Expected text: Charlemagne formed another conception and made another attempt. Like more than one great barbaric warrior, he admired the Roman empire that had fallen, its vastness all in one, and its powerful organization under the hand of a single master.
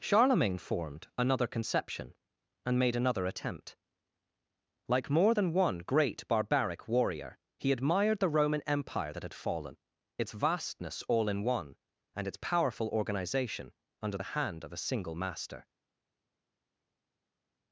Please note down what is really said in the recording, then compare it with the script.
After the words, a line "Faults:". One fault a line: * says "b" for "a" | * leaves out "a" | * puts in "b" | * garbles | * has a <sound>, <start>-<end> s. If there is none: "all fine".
Charlemagne formed another conception and made another attempt. Like more than one great barbaric warrior, he admired the Roman empire that had fallen, its vastness all in one, and its powerful organization under the hand of a single master.
Faults:
all fine